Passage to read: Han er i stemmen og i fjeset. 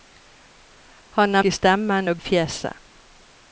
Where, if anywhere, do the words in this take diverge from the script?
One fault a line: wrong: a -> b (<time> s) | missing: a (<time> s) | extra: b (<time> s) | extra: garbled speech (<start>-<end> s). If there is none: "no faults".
no faults